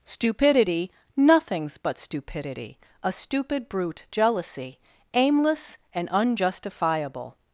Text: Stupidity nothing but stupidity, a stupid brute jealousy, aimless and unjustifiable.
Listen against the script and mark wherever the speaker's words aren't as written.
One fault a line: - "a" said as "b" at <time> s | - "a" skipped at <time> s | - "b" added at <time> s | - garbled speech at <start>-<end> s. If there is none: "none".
- "nothing" said as "nothings" at 1.1 s